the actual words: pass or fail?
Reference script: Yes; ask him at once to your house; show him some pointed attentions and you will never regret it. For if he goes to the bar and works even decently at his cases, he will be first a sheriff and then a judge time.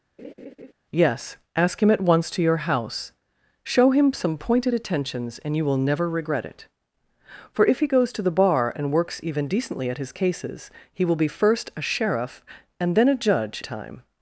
pass